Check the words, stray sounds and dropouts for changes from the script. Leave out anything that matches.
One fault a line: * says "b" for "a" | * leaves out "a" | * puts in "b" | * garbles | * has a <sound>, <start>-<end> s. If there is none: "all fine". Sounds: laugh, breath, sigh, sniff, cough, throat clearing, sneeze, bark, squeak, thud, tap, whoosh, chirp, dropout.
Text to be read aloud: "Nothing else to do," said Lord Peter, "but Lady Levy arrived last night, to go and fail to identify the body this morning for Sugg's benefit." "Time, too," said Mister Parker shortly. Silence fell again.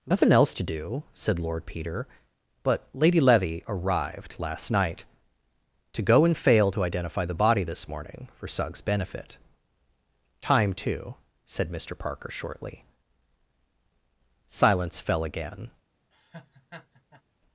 * has a laugh, 16.1-17.2 s